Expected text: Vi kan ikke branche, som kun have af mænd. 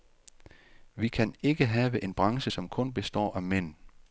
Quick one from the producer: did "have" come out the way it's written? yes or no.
no